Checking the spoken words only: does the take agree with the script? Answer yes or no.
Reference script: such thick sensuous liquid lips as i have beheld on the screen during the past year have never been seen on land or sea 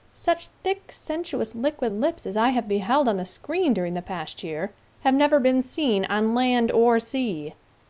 yes